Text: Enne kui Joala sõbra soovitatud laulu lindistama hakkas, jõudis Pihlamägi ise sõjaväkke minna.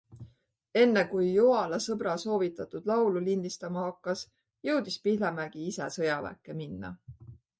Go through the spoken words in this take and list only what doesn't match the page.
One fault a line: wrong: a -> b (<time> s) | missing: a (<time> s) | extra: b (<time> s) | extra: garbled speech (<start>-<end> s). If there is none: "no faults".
no faults